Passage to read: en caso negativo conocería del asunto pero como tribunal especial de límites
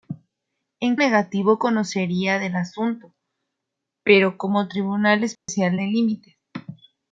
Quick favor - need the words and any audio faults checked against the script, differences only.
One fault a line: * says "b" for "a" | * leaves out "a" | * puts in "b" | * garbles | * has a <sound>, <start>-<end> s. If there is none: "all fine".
* leaves out "caso"
* has a dropout, 5.4-5.5 s